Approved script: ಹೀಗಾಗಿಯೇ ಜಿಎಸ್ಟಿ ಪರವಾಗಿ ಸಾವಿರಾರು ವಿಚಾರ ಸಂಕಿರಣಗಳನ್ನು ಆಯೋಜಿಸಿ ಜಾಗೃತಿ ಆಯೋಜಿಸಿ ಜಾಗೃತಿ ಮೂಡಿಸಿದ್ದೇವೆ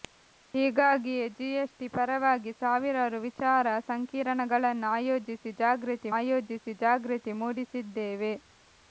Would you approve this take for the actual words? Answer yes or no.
yes